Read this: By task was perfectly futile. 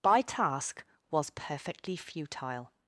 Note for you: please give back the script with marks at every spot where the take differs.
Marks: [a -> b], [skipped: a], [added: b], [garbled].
By task was perfectly futile.